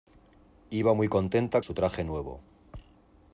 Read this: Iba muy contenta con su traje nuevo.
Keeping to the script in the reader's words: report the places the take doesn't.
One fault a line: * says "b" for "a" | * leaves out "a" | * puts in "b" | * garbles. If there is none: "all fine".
* leaves out "con"